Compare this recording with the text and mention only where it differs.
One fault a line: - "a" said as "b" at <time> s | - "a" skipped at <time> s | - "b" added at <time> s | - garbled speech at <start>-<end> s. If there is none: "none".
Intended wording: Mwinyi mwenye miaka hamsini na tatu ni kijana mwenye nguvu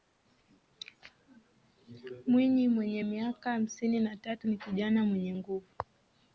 none